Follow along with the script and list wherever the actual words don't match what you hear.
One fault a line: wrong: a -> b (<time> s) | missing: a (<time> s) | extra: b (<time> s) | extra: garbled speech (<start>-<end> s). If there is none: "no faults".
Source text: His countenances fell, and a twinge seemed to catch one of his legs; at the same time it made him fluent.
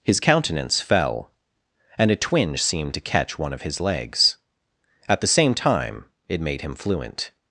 wrong: countenances -> countenance (0.2 s)